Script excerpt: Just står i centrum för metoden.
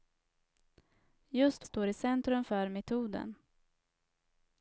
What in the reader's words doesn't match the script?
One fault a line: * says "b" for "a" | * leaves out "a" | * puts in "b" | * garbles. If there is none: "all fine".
all fine